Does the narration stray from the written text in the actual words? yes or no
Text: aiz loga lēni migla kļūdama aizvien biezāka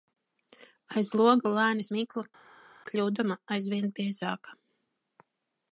no